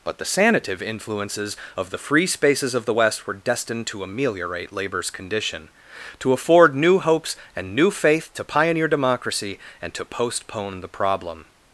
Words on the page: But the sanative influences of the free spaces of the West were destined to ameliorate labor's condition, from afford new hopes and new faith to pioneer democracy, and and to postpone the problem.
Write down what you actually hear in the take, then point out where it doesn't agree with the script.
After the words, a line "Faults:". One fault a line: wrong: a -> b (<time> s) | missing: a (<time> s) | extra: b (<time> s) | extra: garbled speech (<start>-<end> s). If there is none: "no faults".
But the sanative influences of the free spaces of the West were destined to ameliorate labor's condition, to afford new hopes and new faith to pioneer democracy, and to postpone the problem.
Faults:
wrong: from -> to (6.2 s)
missing: and (9.9 s)